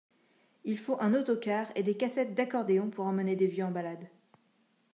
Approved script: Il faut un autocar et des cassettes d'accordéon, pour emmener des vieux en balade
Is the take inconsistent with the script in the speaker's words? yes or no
no